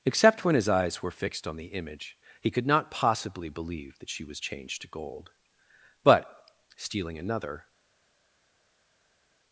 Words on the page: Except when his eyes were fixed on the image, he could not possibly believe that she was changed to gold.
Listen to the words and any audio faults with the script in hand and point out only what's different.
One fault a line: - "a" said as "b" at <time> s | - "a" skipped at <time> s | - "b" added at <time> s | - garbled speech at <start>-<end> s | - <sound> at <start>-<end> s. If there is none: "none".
- "But stealing another" added at 6.0 s